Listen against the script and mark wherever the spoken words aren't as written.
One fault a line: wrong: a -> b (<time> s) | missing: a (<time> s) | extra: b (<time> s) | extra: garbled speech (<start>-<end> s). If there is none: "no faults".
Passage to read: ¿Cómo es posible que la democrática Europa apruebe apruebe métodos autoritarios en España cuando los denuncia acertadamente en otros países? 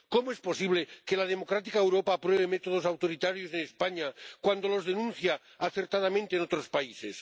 missing: apruebe (2.5 s)